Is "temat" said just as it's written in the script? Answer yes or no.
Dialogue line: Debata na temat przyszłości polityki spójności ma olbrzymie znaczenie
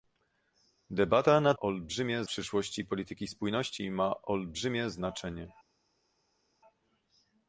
no